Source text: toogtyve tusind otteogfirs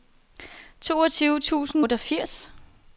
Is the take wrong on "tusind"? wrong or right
right